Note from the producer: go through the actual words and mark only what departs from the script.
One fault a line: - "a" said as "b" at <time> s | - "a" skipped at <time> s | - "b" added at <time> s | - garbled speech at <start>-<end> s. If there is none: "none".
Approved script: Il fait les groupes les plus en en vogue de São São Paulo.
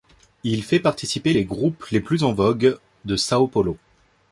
- "participer" added at 0.8 s
- "en" skipped at 2.3 s
- "São" skipped at 3.5 s